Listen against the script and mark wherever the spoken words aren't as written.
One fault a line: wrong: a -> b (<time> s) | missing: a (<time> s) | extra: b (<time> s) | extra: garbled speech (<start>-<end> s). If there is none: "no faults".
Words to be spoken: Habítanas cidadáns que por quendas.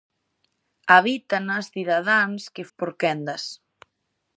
no faults